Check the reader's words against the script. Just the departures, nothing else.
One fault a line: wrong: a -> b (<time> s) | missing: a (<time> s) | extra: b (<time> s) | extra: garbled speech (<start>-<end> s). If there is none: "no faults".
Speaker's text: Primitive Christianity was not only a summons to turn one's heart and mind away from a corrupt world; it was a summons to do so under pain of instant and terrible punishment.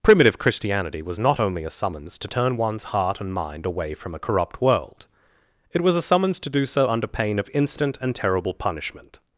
no faults